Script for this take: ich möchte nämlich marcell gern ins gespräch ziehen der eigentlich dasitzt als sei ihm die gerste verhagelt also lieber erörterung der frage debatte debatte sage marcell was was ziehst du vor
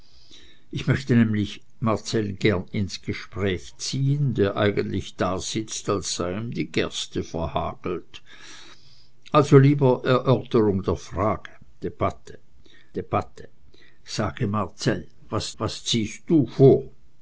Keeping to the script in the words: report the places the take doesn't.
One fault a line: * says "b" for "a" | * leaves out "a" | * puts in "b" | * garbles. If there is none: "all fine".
all fine